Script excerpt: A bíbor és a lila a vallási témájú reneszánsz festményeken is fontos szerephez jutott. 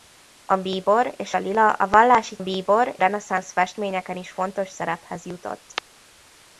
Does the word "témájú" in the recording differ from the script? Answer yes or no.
yes